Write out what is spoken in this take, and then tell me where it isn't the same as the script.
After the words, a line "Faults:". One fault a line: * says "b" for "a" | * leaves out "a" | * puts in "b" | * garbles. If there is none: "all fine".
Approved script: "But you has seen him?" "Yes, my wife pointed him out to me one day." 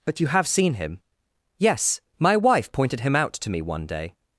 "But you have seen him?" "Yes, my wife pointed him out to me one day."
Faults:
* says "have" for "has"